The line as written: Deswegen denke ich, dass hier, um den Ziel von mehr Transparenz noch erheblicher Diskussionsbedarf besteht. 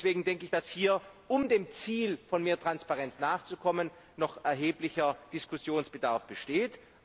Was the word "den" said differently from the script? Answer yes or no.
yes